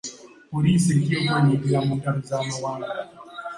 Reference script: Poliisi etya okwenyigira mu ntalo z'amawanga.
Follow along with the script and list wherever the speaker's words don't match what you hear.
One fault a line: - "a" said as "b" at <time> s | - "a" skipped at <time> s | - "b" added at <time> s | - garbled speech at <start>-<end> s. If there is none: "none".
none